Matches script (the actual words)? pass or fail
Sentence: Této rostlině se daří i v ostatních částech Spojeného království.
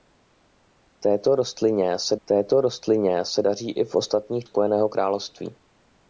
fail